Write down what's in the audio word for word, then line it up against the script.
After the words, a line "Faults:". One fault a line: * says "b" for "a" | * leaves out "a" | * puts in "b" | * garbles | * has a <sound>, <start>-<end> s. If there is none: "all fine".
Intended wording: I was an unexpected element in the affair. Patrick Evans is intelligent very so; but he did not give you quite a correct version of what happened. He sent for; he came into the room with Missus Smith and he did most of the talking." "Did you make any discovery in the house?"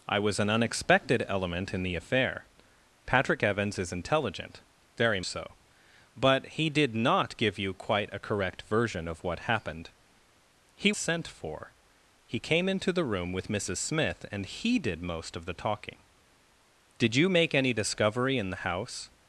I was an unexpected element in the affair. Patrick Evans is intelligent very so; but he did not give you quite a correct version of what happened. He sent for; he came into the room with Missus Smith and he did most of the talking." "Did you make any discovery in the house?"
Faults:
all fine